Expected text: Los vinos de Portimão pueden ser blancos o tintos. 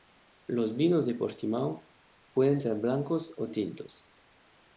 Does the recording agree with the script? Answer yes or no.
yes